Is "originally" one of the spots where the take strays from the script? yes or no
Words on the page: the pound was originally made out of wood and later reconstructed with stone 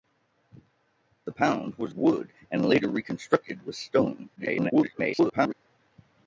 yes